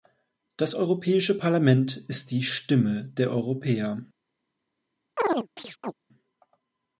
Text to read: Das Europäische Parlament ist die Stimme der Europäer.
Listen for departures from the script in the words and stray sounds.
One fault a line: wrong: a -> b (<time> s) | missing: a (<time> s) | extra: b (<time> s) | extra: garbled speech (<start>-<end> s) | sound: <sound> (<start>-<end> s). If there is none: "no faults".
sound: chirp (5.2-5.9 s)